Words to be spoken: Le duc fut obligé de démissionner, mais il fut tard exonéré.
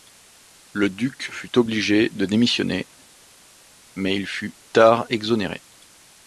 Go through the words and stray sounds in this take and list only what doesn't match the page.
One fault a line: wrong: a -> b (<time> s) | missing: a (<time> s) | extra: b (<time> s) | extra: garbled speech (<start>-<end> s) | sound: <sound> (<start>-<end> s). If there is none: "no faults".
no faults